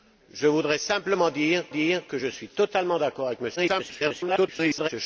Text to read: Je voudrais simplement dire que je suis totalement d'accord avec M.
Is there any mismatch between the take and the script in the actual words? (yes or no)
yes